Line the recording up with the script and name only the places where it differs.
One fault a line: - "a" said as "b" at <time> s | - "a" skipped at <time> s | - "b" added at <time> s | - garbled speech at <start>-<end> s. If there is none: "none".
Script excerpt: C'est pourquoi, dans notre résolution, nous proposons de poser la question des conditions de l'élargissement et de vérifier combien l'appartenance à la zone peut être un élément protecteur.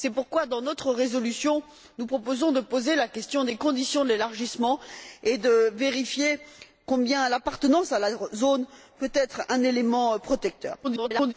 - garbled speech at 10.8-11.3 s